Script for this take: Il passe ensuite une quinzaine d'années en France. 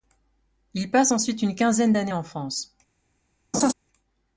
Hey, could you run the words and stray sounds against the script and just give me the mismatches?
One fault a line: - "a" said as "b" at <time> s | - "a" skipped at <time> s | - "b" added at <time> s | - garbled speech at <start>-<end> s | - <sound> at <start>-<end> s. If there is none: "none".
- laugh at 3.5-3.7 s